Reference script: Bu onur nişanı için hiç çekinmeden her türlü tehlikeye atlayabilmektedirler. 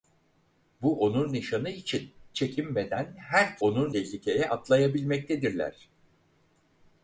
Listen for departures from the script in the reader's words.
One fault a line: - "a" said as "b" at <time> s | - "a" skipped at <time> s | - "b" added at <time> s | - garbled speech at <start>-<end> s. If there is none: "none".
- "hiç" skipped at 2.1 s
- "türlü" said as "onur" at 3.6 s